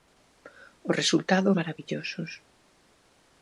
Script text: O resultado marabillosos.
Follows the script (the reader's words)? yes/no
yes